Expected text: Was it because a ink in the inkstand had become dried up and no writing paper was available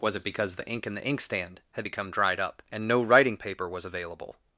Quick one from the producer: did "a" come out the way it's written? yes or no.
no